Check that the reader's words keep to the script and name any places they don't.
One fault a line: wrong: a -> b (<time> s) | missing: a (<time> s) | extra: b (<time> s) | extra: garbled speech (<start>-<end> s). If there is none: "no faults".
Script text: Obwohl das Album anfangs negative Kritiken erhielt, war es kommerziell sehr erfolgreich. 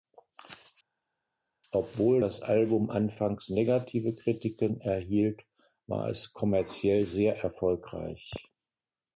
no faults